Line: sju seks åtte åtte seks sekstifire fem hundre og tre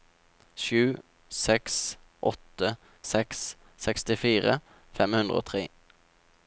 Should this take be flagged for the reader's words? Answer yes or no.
yes